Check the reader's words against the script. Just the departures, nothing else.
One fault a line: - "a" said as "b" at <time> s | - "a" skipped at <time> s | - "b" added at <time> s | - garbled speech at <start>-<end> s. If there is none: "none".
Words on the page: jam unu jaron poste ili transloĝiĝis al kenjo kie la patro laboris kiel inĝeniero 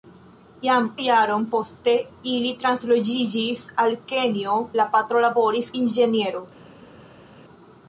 - "unu" skipped at 0.8 s
- "kie" skipped at 4.6 s
- "kiel" skipped at 5.7 s